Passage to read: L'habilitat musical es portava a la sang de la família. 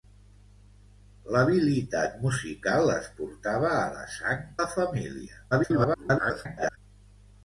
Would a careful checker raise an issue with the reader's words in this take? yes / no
yes